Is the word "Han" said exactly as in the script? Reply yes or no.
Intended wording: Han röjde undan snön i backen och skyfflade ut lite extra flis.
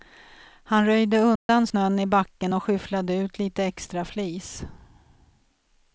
yes